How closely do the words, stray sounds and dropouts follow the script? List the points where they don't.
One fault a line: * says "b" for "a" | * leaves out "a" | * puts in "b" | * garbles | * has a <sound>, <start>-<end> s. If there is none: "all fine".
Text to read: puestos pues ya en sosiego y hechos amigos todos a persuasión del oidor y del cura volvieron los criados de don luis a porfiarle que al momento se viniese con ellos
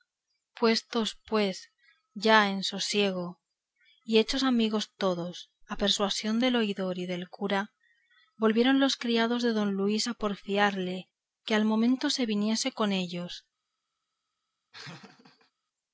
* has a laugh, 14.7-15.5 s